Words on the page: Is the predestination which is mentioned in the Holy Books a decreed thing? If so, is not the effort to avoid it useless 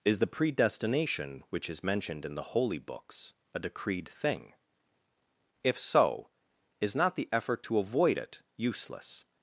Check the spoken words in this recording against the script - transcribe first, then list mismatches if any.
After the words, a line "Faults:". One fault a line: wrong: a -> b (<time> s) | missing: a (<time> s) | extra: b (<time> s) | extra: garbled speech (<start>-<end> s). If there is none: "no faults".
Is the predestination which is mentioned in the Holy Books a decreed thing? If so, is not the effort to avoid it useless
Faults:
no faults